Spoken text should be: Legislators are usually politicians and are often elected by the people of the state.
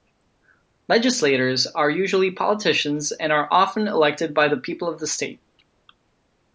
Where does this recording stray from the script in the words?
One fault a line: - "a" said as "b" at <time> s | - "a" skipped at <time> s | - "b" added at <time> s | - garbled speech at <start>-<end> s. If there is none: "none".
none